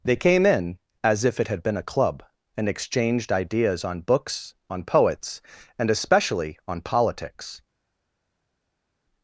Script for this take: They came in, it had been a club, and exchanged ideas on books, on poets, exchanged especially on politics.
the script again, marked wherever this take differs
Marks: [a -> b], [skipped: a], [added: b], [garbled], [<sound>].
They came in, [added: as if] it had been a club, and exchanged ideas on books, on poets, [exchanged -> and] especially on politics.